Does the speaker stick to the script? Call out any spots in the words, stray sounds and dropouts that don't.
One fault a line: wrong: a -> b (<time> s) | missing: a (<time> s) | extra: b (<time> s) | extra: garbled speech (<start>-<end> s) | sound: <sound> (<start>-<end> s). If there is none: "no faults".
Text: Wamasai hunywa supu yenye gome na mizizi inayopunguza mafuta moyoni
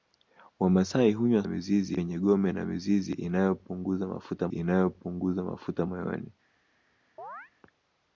wrong: supu -> mizizi (1.5 s)
extra: inayopunguza mafuta (4.5 s)
sound: chirp (7.2-7.5 s)